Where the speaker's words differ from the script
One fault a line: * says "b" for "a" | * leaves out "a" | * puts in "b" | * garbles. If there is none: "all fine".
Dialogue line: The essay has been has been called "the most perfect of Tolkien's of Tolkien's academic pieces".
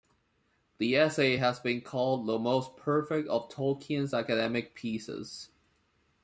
* leaves out "has been"
* leaves out "of Tolkien's"